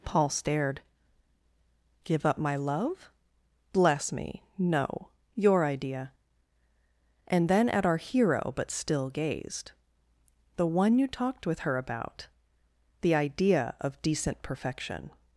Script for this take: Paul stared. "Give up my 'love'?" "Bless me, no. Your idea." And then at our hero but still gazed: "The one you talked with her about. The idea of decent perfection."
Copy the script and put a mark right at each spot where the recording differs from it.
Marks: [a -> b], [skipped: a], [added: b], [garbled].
Paul stared. "Give up my 'love'?" "Bless me, no. Your idea." And then at our hero but still gazed: "The one you talked with her about. The idea of decent perfection."